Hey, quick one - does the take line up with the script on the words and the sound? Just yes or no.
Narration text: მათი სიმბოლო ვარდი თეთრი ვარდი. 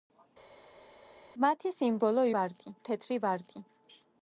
yes